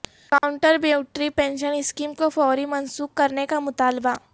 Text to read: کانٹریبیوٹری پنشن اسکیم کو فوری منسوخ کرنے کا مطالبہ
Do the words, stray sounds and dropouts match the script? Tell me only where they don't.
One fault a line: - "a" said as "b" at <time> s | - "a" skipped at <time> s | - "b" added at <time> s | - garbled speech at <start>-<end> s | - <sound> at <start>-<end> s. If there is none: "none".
- dropout at 0.4-0.4 s